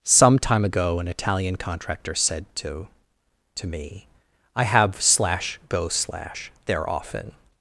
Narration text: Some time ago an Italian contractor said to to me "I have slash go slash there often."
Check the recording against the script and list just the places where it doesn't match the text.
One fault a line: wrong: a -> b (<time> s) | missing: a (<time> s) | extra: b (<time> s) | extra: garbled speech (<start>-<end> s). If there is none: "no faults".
no faults